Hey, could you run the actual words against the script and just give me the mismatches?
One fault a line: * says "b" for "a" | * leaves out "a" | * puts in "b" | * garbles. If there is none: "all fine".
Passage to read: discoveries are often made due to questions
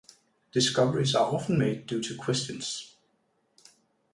all fine